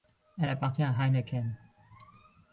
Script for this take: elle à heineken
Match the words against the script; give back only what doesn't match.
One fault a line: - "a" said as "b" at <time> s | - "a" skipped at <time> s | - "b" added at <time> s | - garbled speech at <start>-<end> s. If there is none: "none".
- "appartient" added at 0.5 s